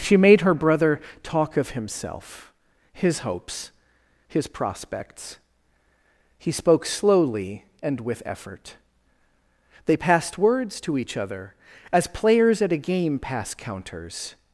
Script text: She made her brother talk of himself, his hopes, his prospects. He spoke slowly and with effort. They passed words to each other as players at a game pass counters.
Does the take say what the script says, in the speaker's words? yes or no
yes